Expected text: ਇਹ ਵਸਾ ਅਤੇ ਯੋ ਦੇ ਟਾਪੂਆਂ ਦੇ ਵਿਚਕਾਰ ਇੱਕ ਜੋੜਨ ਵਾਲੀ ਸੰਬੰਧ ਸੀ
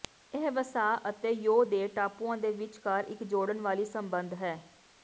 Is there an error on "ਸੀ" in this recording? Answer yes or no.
yes